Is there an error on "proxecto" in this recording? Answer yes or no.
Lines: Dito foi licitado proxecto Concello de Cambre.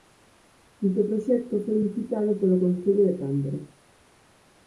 yes